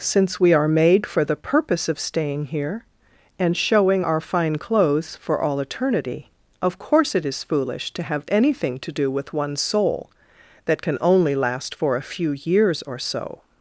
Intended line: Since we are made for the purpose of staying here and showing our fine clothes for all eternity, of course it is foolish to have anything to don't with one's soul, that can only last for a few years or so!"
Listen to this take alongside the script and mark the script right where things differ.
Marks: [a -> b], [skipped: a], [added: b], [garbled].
Since we are made for the purpose of staying here and showing our fine clothes for all eternity, of course it is foolish to have anything to [don't -> do] with one's soul, that can only last for a few years or so!"